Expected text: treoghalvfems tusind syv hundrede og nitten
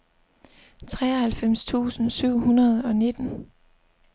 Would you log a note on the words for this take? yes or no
no